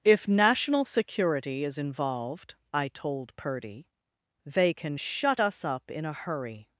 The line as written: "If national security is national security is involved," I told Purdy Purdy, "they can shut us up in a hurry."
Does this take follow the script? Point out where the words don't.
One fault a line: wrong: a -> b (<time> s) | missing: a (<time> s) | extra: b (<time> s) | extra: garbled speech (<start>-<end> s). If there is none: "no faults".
missing: national security is (1.8 s)
missing: Purdy (3.9 s)